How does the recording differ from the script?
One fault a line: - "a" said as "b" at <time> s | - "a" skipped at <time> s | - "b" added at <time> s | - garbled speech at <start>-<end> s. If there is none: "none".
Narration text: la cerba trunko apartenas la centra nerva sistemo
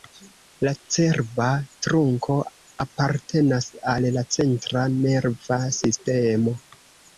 - "al" added at 3.9 s